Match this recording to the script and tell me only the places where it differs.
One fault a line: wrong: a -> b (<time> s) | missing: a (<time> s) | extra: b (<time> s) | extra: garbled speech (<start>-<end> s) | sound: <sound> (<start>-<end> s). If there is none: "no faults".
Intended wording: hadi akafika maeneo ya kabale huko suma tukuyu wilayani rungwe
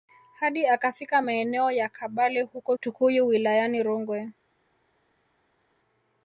missing: suma (2.8 s)